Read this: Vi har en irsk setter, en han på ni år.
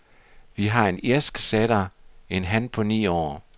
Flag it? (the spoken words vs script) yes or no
no